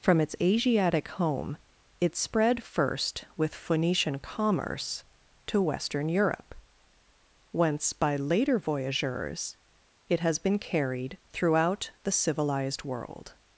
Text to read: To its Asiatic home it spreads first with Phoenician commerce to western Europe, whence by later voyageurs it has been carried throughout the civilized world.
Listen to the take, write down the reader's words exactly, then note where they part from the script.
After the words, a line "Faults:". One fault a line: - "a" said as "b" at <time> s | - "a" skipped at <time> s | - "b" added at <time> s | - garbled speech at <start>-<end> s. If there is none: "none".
From its Asiatic home it spread first with Phoenician commerce to western Europe, whence by later voyageurs it has been carried throughout the civilized world.
Faults:
- "To" said as "From" at 0.0 s
- "spreads" said as "spread" at 2.1 s